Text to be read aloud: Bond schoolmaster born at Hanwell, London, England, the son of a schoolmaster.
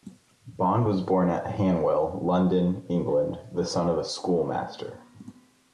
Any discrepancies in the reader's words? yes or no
yes